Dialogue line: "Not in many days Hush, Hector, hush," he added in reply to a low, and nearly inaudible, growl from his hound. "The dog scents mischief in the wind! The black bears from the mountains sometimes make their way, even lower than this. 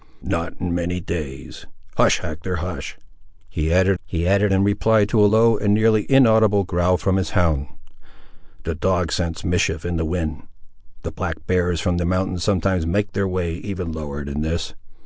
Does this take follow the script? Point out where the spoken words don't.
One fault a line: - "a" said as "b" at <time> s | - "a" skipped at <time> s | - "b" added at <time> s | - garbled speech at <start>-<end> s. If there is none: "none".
- "he added" added at 4.0 s